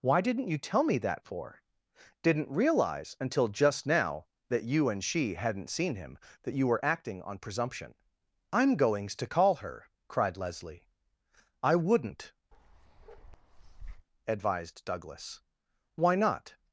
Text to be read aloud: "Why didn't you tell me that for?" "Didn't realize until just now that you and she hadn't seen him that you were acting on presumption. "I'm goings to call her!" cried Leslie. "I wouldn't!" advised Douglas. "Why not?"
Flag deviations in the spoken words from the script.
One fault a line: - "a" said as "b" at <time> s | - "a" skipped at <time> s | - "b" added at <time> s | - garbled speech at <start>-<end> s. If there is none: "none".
none